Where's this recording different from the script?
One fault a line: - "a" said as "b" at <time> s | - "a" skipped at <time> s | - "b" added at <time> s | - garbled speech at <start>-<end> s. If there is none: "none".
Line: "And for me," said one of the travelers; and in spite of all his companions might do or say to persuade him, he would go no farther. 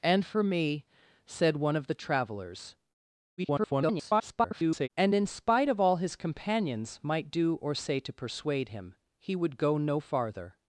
- garbled speech at 3.4-4.9 s